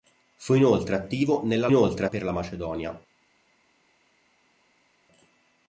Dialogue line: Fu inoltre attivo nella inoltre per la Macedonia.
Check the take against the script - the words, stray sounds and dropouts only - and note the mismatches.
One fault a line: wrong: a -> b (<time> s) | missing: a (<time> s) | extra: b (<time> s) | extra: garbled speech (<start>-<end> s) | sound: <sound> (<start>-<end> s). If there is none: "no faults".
no faults